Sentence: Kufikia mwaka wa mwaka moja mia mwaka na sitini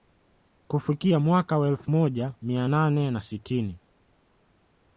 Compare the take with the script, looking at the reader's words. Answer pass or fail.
fail